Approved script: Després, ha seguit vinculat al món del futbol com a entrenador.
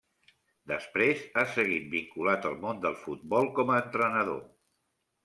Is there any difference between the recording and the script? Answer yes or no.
no